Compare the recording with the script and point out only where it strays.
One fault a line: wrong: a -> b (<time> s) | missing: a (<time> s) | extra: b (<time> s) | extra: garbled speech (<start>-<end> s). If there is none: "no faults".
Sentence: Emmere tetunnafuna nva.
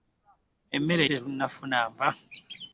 no faults